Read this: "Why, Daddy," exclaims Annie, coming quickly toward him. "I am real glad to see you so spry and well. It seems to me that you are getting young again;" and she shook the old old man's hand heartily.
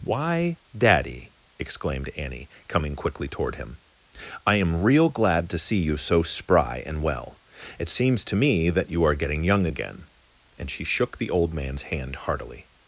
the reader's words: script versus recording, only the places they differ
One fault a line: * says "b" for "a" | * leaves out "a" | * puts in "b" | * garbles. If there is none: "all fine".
* says "exclaimed" for "exclaims"
* leaves out "old"